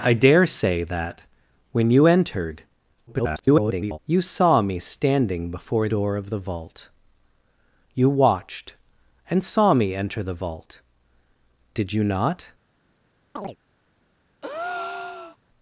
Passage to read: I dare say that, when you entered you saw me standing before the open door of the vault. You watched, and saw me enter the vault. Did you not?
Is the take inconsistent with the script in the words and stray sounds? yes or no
yes